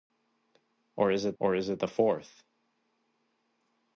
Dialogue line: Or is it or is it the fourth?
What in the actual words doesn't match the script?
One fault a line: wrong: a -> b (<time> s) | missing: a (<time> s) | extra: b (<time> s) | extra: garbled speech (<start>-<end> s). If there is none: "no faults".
no faults